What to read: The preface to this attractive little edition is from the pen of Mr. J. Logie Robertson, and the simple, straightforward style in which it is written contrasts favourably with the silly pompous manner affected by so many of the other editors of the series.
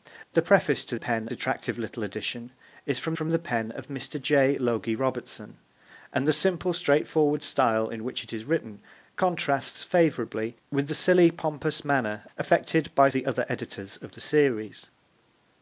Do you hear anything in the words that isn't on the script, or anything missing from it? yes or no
yes